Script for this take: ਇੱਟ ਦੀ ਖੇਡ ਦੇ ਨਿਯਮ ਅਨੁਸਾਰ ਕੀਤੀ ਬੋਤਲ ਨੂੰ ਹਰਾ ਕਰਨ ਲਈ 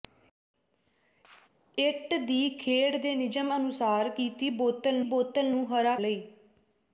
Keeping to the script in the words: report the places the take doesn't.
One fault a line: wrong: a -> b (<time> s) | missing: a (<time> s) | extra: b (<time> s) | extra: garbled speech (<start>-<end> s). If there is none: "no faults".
extra: ਬੋਤਲ (5.1 s)
missing: ਕਰਨ (5.9 s)